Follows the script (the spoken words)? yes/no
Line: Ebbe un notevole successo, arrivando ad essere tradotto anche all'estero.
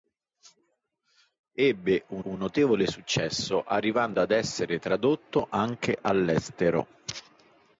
no